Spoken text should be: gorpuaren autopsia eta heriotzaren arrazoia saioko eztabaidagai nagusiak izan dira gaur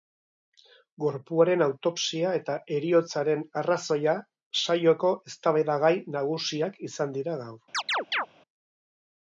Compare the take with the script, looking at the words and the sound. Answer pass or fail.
fail